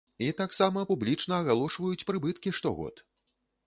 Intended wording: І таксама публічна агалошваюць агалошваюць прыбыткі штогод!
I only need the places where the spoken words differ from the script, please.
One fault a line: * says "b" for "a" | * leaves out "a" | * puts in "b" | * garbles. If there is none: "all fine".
* leaves out "агалошваюць"